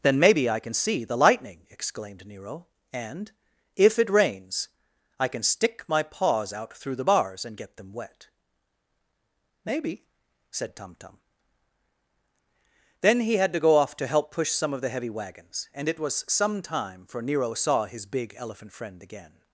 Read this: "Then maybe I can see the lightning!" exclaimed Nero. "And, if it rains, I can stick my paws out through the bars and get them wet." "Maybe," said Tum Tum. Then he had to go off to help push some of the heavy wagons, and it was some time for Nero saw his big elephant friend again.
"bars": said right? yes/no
yes